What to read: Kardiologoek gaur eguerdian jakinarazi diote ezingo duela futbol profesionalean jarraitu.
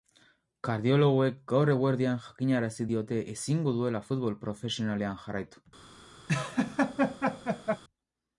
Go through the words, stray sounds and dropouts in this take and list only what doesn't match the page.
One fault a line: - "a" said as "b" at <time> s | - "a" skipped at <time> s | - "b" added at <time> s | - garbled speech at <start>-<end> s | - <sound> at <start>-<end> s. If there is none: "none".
- laugh at 6.3-7.8 s